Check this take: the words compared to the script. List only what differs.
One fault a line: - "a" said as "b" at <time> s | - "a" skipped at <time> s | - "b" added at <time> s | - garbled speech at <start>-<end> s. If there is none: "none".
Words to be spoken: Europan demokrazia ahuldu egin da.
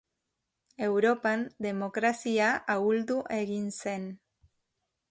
- "da" said as "zen" at 3.8 s